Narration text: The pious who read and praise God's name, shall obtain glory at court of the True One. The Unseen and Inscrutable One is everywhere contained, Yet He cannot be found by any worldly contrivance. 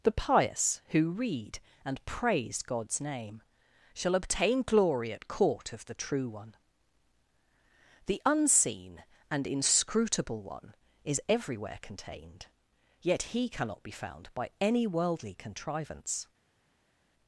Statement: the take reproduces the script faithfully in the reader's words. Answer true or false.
true